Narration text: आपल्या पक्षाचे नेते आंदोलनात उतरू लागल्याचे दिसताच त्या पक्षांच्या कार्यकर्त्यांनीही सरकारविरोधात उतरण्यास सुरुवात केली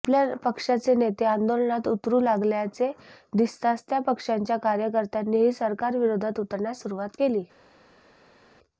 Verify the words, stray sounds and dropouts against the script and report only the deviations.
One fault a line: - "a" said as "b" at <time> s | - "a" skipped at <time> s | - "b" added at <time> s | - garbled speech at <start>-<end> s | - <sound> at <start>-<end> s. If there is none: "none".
none